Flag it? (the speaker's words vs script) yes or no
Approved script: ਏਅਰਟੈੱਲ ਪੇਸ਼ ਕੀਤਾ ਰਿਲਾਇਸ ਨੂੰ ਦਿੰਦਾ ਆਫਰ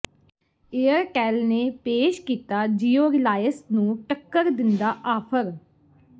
yes